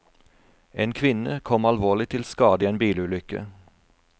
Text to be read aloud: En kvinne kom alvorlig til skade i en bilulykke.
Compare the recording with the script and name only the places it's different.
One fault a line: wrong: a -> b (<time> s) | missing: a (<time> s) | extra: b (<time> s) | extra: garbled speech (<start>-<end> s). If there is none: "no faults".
no faults